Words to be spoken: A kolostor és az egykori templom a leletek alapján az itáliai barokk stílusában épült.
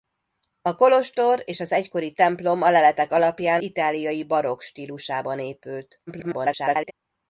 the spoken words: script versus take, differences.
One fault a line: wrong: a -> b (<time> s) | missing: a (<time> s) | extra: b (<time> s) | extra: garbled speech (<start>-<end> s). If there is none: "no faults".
missing: az (3.6 s)
extra: garbled speech (6.1-6.9 s)